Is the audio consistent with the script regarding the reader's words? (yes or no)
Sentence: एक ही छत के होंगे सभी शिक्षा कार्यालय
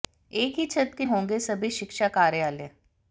yes